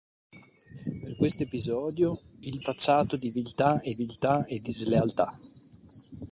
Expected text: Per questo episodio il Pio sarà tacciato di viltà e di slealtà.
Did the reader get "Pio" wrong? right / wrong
wrong